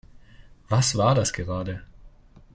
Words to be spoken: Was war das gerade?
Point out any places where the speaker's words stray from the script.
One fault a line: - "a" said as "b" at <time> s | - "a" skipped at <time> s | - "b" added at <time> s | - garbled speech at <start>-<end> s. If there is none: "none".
none